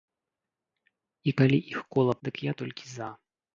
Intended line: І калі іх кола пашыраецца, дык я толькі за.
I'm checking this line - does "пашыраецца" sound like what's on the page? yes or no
no